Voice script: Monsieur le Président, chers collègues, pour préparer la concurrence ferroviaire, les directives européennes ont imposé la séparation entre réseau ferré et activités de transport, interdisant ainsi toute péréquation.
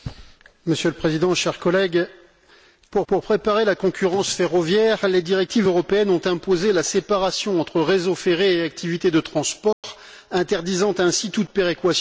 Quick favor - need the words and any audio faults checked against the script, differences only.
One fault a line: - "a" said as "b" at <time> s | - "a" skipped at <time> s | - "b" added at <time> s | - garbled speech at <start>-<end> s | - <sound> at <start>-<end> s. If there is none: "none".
- "pour" added at 3.1 s
- dropout at 9.7-9.8 s